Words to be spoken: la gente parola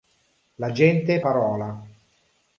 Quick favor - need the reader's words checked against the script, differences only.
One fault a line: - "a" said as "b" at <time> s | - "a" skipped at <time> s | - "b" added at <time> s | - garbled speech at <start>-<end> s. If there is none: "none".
none